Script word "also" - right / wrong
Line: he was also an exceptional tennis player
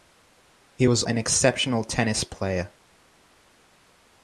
wrong